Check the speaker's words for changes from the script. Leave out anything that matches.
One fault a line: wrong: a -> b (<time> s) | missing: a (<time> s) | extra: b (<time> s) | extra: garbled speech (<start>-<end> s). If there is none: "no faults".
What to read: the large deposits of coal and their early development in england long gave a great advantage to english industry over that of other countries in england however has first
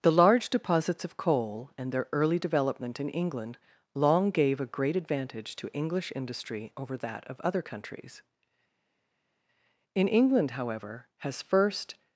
no faults